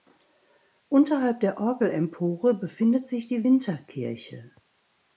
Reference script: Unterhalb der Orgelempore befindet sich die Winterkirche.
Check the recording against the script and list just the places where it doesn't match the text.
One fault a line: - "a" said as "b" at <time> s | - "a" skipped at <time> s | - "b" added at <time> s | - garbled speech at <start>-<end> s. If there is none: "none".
none